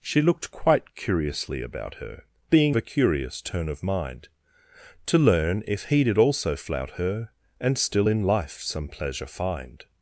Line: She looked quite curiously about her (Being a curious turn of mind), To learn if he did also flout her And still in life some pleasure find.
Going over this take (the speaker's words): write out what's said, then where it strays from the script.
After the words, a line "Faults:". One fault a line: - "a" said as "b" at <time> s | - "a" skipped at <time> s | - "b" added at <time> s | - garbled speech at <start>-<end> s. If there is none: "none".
She looked quite curiously about her (Being a curious turn of mind), To learn if he did also flout her And still in life some pleasure find.
Faults:
none